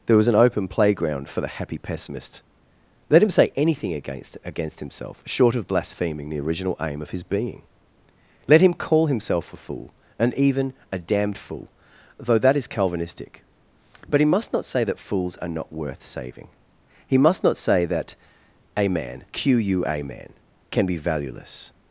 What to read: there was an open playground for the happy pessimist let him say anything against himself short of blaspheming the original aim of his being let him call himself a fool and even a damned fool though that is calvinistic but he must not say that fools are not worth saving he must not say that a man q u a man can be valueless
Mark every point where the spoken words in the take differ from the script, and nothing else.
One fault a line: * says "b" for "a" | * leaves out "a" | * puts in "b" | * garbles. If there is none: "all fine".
* puts in "against"